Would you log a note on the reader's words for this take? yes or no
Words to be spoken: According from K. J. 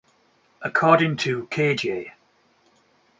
yes